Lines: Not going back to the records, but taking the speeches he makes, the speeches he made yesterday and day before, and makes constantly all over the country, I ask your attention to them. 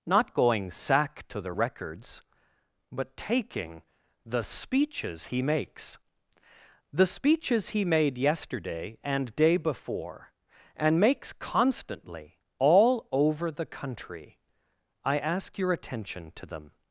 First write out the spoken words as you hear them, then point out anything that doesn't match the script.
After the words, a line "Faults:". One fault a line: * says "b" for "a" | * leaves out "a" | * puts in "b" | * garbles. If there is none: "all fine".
Not going sack to the records, but taking the speeches he makes, the speeches he made yesterday and day before, and makes constantly all over the country, I ask your attention to them.
Faults:
* says "sack" for "back"